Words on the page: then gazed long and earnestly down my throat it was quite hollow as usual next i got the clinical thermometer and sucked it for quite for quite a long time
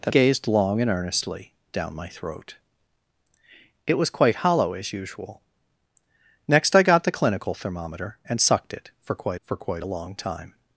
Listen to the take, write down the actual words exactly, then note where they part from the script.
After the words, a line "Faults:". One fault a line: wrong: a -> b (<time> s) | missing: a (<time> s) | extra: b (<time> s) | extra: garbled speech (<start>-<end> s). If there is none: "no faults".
then gazed long and earnestly down my throat it was quite hollow as usual next i got the clinical thermometer and sucked it for quite for quite a long time
Faults:
no faults